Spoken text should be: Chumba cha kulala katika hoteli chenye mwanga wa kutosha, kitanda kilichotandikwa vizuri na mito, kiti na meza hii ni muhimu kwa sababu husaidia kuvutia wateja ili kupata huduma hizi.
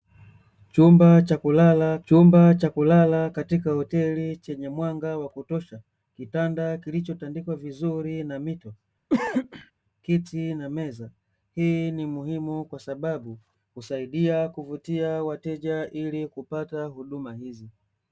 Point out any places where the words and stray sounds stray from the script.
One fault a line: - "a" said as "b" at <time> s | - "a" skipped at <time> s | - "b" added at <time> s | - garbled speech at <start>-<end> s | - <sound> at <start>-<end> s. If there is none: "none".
- "chumba cha kulala" added at 2.0 s
- cough at 9.1-9.7 s